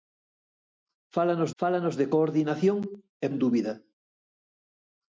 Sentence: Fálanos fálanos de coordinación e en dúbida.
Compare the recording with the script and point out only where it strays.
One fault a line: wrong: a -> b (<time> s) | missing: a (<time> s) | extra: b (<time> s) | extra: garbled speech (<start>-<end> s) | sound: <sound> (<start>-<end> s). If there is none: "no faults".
no faults